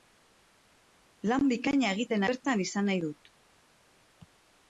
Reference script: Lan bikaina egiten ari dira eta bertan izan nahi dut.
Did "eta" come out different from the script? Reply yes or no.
yes